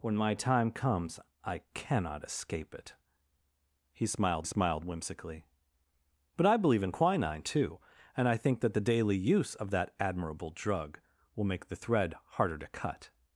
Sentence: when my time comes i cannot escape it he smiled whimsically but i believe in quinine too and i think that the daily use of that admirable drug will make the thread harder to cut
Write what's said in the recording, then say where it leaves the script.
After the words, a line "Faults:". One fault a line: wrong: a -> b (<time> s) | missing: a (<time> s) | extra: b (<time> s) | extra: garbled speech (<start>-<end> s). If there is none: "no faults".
when my time comes i cannot escape it he smiled smiled whimsically but i believe in quinine too and i think that the daily use of that admirable drug will make the thread harder to cut
Faults:
extra: smiled (4.4 s)